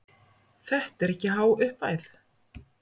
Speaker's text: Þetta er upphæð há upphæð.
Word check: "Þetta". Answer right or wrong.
right